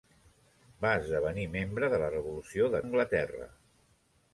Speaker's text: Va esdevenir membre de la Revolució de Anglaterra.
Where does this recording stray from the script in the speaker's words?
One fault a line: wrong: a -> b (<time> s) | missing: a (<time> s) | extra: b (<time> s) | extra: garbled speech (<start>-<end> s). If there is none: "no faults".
no faults